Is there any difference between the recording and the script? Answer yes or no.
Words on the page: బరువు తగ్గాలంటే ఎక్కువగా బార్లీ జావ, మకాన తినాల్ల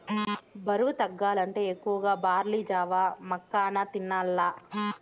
no